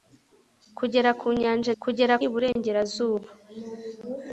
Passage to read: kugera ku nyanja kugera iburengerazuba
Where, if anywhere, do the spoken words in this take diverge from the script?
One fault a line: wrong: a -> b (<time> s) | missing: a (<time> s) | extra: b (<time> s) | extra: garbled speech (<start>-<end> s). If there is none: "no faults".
no faults